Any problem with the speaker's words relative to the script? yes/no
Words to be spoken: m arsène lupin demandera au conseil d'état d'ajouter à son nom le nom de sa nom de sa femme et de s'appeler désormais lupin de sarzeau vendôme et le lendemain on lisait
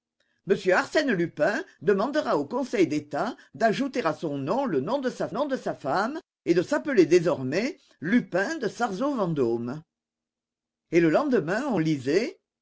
no